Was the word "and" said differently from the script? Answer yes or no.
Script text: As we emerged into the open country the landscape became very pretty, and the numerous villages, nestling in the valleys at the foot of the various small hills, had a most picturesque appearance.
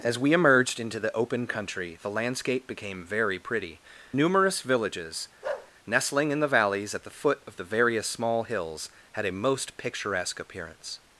yes